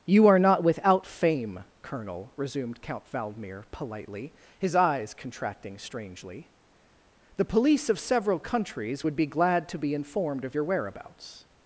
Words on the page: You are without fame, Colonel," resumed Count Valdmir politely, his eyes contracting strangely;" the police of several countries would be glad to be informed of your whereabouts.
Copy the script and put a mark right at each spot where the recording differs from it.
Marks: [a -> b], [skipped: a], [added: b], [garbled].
You are [added: not] without fame, Colonel," resumed Count Valdmir politely, his eyes contracting strangely;" the police of several countries would be glad to be informed of your whereabouts.